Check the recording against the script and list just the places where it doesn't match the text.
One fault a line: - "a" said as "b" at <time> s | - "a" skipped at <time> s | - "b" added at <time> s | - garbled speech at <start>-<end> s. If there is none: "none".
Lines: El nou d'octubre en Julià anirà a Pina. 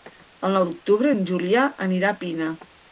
none